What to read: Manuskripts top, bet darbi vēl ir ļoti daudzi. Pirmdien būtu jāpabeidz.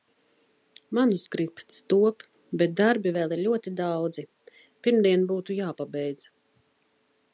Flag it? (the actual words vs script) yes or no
no